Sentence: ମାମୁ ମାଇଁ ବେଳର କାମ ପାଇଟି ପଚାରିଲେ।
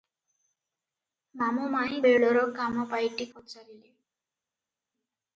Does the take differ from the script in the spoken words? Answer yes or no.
no